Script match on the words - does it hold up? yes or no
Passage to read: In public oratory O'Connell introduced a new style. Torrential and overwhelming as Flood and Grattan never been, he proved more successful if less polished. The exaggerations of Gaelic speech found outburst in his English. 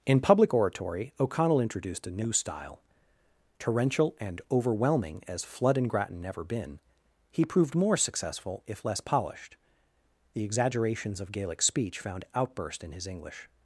yes